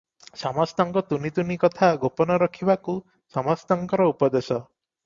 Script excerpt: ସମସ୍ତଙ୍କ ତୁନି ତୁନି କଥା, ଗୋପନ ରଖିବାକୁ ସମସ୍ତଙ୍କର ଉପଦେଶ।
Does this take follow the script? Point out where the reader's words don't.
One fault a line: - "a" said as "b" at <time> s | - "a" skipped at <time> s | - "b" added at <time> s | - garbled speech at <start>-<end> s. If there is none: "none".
none